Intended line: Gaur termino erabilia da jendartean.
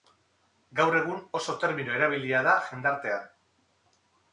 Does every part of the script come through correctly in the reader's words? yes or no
no